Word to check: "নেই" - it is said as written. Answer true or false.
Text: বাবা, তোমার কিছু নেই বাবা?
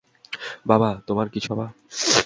false